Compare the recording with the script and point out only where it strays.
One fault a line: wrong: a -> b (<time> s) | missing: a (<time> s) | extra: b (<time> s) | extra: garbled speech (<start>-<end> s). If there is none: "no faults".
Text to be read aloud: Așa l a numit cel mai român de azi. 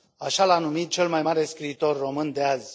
extra: mare scriitor (1.2 s)